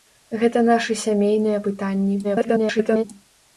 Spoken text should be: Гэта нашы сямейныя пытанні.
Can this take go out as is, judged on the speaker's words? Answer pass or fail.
fail